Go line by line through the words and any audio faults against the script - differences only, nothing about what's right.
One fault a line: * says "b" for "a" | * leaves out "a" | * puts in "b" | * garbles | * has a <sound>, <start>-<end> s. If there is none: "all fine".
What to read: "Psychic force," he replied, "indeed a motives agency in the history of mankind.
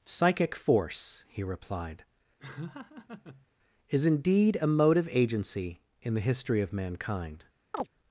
* has a laugh, 2.4-3.5 s
* puts in "is"
* says "motive" for "motives"
* has a chirp, 7.7-7.9 s